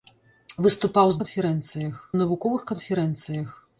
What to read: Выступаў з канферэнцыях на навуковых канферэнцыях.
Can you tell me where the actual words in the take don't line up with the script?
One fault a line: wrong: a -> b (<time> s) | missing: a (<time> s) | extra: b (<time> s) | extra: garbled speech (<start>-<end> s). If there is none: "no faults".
no faults